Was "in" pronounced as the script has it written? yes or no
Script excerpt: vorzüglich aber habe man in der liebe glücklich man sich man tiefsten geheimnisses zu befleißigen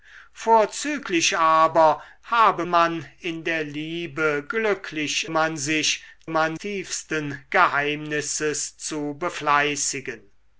yes